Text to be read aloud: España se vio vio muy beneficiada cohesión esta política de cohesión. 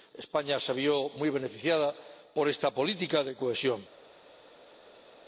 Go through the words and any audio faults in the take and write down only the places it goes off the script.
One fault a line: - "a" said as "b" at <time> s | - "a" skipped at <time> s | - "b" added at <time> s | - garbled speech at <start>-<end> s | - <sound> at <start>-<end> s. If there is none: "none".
- "vio" skipped at 1.1 s
- "cohesión" said as "por" at 2.3 s